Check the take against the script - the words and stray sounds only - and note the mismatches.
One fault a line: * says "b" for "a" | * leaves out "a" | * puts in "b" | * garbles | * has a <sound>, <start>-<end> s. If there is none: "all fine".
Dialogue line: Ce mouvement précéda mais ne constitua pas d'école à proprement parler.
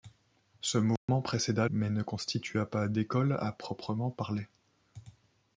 * has a dropout, 1.0-1.1 s